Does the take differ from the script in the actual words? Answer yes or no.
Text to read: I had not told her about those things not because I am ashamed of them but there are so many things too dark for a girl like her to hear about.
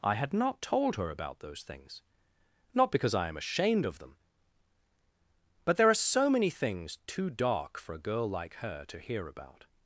no